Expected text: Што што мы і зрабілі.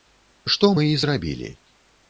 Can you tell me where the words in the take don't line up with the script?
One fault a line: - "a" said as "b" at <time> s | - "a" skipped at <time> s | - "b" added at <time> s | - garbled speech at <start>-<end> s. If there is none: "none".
- "што" skipped at 0.7 s